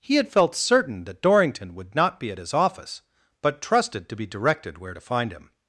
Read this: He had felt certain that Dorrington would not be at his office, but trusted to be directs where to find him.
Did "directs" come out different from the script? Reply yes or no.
yes